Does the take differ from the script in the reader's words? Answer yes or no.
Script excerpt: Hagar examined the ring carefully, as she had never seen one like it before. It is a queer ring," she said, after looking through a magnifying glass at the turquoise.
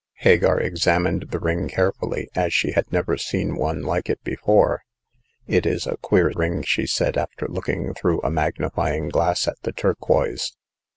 no